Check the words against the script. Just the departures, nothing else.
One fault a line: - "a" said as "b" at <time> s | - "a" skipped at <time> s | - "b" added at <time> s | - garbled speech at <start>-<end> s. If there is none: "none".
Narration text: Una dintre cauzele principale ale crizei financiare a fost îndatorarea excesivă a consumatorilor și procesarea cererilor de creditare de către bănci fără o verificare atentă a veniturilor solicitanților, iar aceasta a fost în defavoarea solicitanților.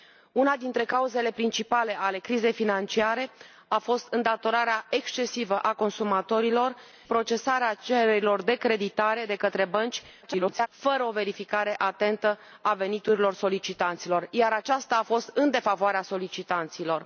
- "și" skipped at 6.8 s
- garbled speech at 10.2-10.7 s